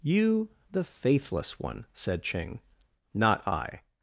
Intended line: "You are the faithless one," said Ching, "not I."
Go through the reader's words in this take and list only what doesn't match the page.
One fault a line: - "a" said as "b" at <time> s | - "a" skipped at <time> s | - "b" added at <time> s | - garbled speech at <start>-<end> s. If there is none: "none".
- "are" skipped at 0.5 s